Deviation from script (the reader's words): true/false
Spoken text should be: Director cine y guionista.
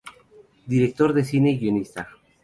true